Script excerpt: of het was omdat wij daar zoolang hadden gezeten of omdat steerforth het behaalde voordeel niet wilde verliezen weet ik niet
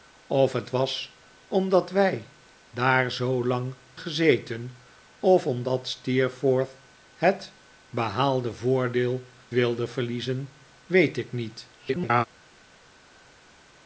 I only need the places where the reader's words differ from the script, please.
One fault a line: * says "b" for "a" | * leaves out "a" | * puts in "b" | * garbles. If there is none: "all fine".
* leaves out "hadden"
* leaves out "niet"
* garbles